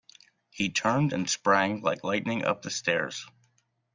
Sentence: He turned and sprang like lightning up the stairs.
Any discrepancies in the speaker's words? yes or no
no